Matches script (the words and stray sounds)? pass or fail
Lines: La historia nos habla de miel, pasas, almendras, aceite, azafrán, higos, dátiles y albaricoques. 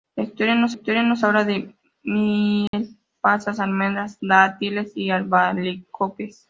fail